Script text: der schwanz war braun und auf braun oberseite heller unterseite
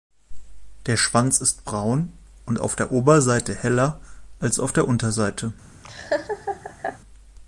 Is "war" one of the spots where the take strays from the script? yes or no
yes